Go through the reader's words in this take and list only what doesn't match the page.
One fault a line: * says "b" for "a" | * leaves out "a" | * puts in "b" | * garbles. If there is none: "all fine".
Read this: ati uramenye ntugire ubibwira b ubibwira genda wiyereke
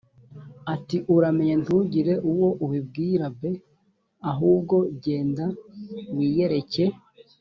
* puts in "uwo"
* says "ahubwo" for "ubibwira"